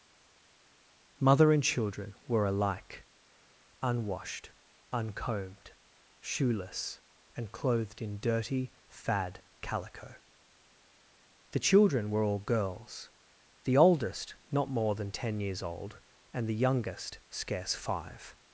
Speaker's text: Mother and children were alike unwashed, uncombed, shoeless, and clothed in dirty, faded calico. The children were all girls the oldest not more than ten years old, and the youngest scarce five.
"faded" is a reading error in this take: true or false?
true